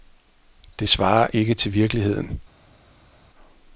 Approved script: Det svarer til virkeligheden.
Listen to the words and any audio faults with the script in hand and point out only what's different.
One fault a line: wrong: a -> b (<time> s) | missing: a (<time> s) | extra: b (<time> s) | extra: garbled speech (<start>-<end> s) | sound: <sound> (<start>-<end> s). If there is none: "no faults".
extra: ikke (1.3 s)